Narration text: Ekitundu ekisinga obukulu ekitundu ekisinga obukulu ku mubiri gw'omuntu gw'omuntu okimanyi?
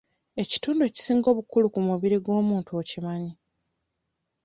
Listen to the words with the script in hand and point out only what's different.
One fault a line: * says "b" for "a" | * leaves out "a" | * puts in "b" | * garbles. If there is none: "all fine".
* leaves out "ekitundu ekisinga obukulu"
* leaves out "gw'omuntu"